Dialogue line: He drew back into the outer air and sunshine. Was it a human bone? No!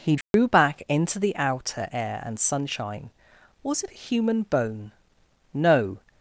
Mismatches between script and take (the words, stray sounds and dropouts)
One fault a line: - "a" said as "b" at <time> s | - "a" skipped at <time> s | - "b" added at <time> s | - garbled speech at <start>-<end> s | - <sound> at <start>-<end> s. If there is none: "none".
- dropout at 0.2-0.3 s